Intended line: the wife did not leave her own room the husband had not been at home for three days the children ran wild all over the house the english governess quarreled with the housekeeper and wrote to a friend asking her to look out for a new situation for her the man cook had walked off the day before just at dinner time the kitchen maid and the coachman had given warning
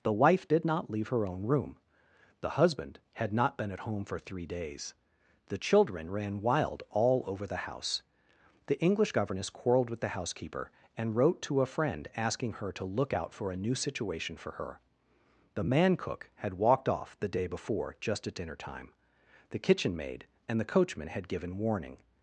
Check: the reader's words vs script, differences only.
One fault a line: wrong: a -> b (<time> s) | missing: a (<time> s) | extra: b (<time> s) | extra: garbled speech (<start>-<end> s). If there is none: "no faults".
no faults